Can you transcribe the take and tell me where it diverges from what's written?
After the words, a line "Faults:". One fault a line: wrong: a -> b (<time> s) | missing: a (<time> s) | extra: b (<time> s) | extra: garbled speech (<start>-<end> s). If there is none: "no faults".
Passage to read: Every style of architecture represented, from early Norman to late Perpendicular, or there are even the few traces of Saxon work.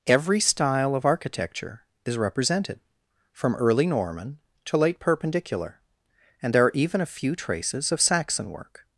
Every style of architecture is represented, from early Norman to late Perpendicular, and there are even a few traces of Saxon work.
Faults:
extra: is (2.0 s)
wrong: or -> and (6.4 s)
wrong: the -> a (7.0 s)